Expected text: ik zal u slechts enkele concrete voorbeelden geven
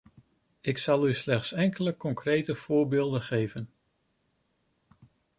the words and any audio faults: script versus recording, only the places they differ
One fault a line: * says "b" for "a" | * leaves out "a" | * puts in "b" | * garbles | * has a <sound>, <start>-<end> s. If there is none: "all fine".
all fine